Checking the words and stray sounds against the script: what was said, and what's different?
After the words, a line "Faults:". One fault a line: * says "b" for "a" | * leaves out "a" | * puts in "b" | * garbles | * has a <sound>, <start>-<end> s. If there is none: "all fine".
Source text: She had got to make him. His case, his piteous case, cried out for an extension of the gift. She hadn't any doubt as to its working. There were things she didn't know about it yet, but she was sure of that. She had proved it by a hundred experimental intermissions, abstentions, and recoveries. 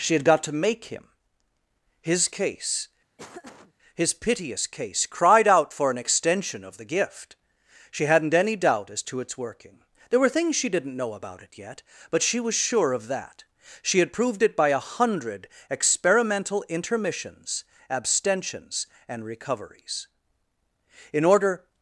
She had got to make him. His case, his piteous case, cried out for an extension of the gift. She hadn't any doubt as to its working. There were things she didn't know about it yet, but she was sure of that. She had proved it by a hundred experimental intermissions, abstentions, and recoveries. In order
Faults:
* has a laugh, 3.2-3.7 s
* puts in "In order"